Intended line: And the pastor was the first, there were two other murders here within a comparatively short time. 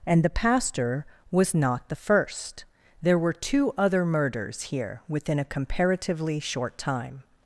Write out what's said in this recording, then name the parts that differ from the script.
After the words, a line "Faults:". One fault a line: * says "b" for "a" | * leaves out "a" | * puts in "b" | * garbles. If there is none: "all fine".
And the pastor was not the first, there were two other murders here within a comparatively short time.
Faults:
* puts in "not"